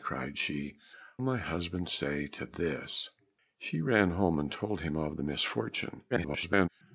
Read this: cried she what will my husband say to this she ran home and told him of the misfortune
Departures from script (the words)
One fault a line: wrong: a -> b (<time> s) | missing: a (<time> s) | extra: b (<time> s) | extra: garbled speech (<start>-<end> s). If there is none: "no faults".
missing: what will (0.8 s)
extra: garbled speech (6.1-6.7 s)